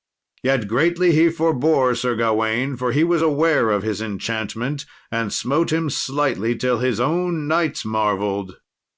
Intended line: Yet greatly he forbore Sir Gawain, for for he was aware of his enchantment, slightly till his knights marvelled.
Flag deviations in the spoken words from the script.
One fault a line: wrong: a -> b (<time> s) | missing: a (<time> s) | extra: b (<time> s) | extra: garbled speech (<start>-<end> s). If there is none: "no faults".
missing: for (2.9 s)
extra: and smote him (5.1 s)
extra: own (7.0 s)